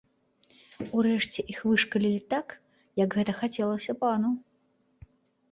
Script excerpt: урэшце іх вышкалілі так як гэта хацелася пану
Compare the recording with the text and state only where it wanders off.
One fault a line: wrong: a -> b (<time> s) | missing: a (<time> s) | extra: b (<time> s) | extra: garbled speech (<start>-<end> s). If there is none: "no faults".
no faults